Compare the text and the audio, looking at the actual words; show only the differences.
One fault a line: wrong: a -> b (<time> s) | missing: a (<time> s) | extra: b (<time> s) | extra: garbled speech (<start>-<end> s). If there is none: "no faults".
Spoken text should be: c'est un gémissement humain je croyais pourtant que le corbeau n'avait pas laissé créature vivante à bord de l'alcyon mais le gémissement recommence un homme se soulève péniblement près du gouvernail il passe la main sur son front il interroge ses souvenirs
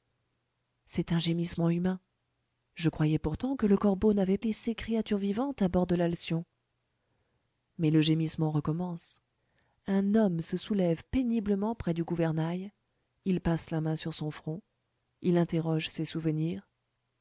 missing: pas (4.4 s)